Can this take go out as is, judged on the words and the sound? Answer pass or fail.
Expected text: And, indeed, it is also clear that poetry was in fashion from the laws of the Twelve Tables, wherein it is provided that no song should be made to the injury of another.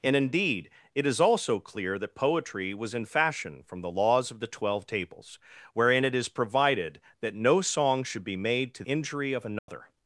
fail